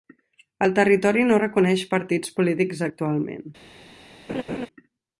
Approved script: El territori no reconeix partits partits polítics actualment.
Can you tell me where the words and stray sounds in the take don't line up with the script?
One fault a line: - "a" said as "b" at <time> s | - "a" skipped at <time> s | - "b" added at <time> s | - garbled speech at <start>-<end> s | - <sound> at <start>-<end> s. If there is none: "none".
- "partits" skipped at 2.3 s
- laugh at 4.3-4.7 s